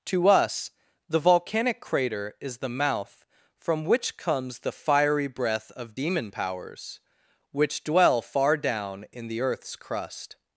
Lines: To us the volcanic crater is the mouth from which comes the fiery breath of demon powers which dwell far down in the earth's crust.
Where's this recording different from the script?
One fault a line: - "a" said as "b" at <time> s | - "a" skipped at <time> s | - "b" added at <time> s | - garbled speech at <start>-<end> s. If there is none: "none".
none